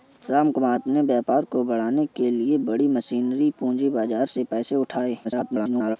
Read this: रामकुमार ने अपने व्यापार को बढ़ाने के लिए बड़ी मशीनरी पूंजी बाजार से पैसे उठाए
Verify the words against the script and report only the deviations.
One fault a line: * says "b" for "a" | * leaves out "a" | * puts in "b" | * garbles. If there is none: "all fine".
* leaves out "ने"
* garbles